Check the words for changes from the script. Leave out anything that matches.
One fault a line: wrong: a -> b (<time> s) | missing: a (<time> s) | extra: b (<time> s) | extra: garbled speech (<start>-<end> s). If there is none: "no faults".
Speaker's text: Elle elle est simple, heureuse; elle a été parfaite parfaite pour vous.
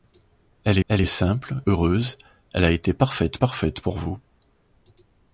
no faults